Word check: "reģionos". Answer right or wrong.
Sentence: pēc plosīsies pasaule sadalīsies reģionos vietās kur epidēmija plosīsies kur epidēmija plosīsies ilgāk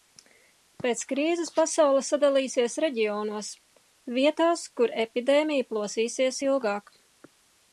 right